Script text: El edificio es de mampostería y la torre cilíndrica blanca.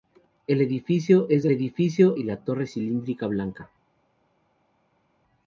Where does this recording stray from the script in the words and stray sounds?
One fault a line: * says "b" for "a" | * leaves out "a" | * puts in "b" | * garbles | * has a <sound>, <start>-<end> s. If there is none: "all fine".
* says "edificio" for "mampostería"